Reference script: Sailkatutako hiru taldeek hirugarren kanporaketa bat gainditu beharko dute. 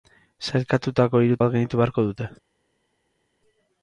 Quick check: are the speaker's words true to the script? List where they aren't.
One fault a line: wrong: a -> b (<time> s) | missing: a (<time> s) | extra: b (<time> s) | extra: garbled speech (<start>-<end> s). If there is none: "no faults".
missing: taldeek hirugarren kanporaketa (1.4 s)